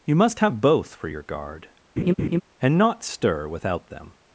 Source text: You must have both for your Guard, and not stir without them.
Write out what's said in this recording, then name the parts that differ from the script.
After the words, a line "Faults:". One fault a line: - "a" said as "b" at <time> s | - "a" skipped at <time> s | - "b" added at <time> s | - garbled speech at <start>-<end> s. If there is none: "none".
You must have both for your Guard, and not stir without them.
Faults:
none